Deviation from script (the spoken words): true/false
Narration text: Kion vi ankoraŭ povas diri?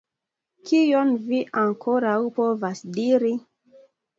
false